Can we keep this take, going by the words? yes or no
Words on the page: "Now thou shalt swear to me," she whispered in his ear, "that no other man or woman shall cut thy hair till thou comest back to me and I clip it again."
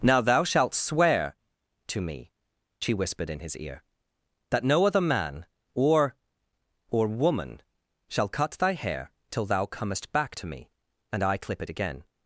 no